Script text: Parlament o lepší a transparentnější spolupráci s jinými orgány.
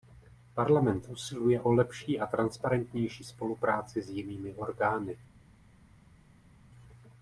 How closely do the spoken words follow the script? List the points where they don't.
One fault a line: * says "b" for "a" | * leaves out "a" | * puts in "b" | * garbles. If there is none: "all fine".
* puts in "usiluje"